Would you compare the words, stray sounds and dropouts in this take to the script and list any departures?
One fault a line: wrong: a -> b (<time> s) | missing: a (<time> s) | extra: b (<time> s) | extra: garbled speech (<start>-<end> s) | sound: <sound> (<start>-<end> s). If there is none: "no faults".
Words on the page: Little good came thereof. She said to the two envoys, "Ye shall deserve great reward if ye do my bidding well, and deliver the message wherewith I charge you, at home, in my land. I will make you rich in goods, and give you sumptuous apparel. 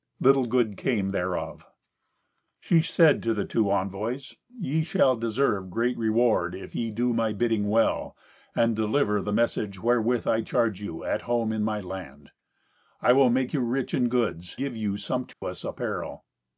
missing: and (14.6 s)
sound: dropout (15.3-15.4 s)